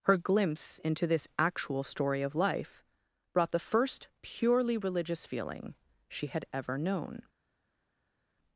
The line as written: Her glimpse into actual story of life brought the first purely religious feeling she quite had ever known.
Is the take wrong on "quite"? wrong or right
wrong